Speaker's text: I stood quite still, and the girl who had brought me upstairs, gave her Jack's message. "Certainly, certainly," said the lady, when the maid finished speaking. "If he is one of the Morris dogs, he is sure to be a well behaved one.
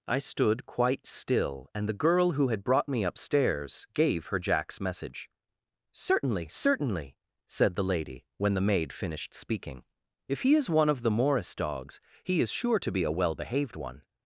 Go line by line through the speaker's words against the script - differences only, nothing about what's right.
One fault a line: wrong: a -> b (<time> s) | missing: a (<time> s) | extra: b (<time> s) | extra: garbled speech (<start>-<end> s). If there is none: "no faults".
no faults